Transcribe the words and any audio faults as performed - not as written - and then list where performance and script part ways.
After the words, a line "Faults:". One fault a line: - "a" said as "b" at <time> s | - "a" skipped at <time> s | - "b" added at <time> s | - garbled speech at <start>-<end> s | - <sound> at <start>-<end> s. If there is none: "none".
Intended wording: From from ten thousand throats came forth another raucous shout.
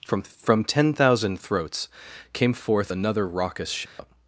From from ten thousand throats came forth another raucous shout.
Faults:
- dropout at 3.9-4.0 s